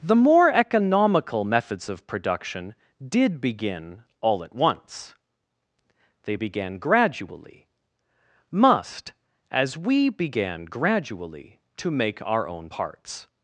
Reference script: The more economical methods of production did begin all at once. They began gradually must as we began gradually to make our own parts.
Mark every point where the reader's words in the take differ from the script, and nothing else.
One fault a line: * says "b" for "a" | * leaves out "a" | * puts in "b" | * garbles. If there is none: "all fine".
all fine